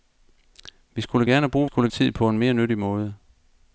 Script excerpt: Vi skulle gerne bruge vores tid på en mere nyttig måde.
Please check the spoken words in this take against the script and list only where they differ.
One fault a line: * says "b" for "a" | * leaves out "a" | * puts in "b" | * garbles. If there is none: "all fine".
* says "skulle" for "vores"